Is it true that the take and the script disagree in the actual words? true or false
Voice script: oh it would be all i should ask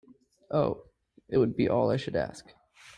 false